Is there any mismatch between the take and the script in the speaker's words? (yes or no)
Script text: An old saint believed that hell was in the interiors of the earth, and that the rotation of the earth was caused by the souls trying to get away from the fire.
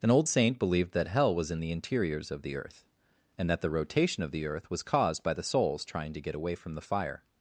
no